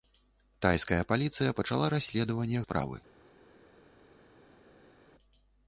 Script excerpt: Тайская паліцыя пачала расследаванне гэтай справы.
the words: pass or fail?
fail